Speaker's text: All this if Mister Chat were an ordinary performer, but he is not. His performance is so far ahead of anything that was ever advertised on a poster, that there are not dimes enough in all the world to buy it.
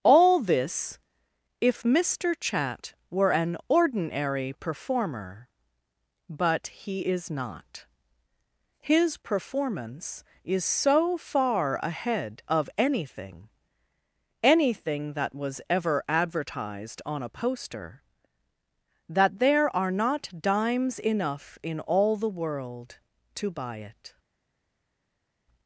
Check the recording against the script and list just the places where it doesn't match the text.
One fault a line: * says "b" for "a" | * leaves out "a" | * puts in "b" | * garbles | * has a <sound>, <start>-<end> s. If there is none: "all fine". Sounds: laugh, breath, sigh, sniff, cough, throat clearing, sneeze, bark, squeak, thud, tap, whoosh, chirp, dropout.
* puts in "anything"